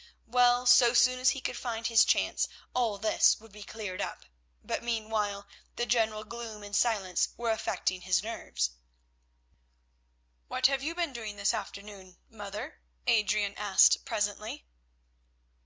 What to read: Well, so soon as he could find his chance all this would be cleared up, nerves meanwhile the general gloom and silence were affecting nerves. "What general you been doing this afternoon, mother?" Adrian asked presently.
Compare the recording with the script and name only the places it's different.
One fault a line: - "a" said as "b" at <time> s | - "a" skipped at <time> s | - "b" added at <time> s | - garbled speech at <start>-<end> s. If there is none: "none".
- "nerves" said as "but" at 4.6 s
- "his" added at 8.0 s
- "general" said as "have" at 10.7 s